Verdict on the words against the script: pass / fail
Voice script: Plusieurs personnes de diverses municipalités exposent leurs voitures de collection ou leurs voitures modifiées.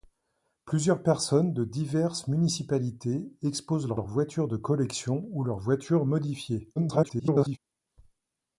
fail